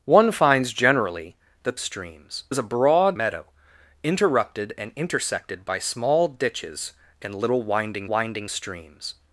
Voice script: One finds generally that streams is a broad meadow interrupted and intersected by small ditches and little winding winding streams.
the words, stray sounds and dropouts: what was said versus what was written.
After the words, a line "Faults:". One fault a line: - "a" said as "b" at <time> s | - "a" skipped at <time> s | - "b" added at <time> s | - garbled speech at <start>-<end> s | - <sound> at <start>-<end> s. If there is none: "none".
One finds generally that streams is a broad meadow interrupted and intersected by small ditches and little winding winding streams.
Faults:
none